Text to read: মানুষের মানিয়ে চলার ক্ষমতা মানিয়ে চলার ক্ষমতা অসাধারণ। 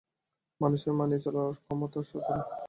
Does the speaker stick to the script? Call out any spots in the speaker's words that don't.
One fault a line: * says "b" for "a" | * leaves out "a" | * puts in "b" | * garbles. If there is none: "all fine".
* leaves out "মানিয়ে চলার ক্ষমতা"